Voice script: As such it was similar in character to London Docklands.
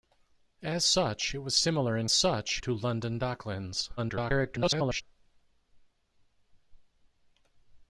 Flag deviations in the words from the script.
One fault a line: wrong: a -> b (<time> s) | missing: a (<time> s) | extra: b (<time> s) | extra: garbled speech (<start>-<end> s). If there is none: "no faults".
wrong: character -> such (2.1 s)
extra: garbled speech (4.0-5.0 s)